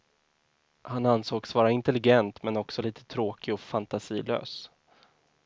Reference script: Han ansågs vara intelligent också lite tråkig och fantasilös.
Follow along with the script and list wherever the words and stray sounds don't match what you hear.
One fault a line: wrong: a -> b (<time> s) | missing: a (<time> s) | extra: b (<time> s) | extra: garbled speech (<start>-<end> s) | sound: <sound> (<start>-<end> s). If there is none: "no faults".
extra: men (2.4 s)